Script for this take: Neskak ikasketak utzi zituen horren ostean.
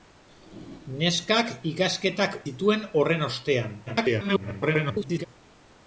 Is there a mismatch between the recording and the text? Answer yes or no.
yes